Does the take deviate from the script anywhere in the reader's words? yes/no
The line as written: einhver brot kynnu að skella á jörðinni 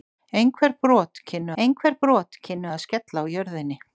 yes